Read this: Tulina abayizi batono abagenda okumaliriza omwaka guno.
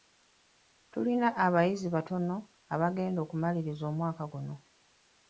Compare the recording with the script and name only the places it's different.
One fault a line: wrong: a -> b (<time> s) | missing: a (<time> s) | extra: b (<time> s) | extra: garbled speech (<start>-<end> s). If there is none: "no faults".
no faults